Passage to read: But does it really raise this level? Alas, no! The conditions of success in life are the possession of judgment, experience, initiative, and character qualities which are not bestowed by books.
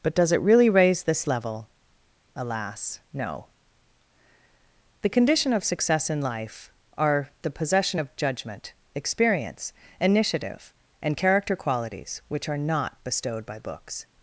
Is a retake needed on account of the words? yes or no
yes